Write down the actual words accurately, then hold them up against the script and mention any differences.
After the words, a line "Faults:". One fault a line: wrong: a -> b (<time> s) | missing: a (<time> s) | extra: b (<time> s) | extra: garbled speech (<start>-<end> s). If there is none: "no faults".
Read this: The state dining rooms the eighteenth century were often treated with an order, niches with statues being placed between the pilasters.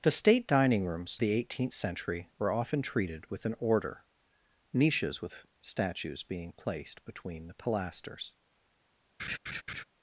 The state dining rooms the eighteenth century were often treated with an order, niches with statues being placed between the pilasters.
Faults:
no faults